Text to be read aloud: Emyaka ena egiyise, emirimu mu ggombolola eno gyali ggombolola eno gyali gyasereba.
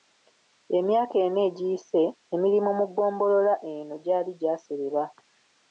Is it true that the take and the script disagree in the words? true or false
true